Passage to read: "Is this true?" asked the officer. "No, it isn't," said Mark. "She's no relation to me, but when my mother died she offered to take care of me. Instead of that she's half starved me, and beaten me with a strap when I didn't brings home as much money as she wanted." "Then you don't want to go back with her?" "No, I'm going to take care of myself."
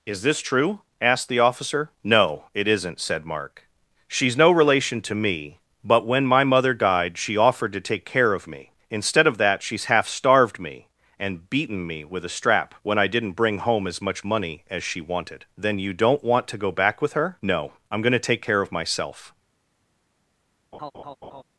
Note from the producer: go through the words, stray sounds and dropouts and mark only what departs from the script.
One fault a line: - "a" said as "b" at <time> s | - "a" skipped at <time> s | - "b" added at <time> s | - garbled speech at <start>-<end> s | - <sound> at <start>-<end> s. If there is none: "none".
- "brings" said as "bring" at 13.3 s
- laugh at 20.7-21.4 s